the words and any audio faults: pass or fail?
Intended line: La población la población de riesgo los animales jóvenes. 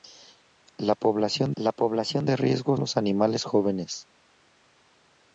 pass